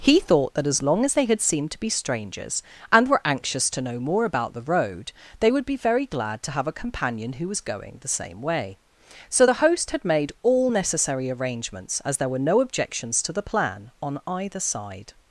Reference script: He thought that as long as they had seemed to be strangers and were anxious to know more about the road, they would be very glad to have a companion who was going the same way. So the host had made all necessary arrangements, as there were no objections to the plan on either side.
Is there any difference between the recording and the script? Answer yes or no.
no